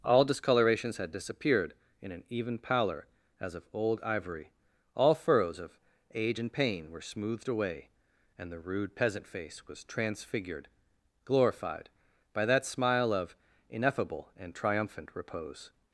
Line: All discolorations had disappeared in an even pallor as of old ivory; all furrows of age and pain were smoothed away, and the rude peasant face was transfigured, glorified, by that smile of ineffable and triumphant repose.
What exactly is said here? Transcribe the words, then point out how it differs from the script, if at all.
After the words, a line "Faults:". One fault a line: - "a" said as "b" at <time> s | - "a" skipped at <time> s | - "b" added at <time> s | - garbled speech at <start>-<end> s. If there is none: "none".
All discolorations had disappeared in an even pallor as of old ivory; all furrows of age and pain were smoothed away, and the rude peasant face was transfigured, glorified, by that smile of ineffable and triumphant repose.
Faults:
none